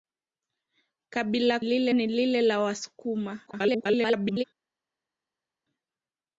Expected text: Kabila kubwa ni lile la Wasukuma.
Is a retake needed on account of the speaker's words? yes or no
yes